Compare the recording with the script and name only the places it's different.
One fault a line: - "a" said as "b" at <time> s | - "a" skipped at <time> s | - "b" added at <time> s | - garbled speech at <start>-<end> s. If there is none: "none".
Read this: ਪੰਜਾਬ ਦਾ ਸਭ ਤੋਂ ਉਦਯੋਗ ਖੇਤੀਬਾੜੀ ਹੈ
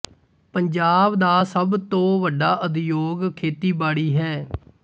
- "ਵੱਡਾ" added at 2.2 s